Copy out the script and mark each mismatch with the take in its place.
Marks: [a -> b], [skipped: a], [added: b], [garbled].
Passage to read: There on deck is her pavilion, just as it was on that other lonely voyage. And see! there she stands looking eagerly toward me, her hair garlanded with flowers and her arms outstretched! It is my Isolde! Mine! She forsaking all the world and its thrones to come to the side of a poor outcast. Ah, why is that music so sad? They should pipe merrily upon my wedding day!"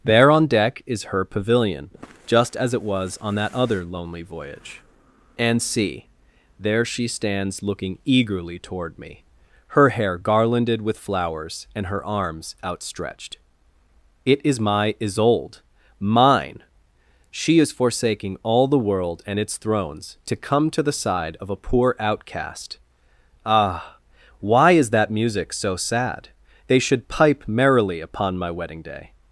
There on deck is her pavilion, just as it was on that other lonely voyage. And see! there she stands looking eagerly toward me, her hair garlanded with flowers and her arms outstretched! It is my Isolde! Mine! She [added: is] forsaking all the world and its thrones to come to the side of a poor outcast. Ah, why is that music so sad? They should pipe merrily upon my wedding day!"